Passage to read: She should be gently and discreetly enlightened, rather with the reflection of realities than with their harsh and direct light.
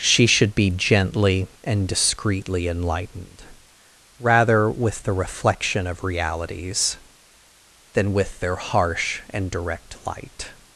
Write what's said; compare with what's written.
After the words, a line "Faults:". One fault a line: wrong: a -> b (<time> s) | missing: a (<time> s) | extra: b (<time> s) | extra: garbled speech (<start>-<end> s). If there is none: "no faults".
She should be gently and discreetly enlightened, rather with the reflection of realities than with their harsh and direct light.
Faults:
no faults